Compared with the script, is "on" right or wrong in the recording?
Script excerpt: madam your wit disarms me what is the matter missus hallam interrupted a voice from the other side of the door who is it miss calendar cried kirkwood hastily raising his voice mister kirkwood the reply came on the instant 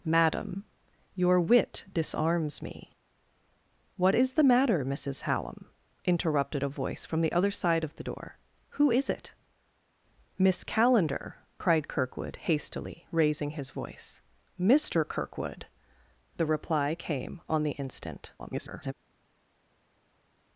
right